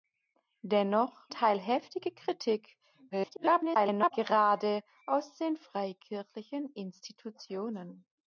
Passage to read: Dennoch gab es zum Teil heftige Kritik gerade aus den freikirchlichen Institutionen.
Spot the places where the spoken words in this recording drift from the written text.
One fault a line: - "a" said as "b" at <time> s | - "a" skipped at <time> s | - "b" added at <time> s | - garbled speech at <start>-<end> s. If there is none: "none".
- "gab es zum" skipped at 1.3 s
- garbled speech at 3.1-4.1 s